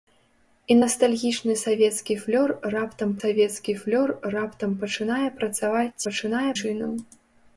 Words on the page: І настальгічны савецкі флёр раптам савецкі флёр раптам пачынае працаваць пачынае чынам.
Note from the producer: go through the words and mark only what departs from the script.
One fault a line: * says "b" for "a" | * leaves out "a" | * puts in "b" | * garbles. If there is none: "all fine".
all fine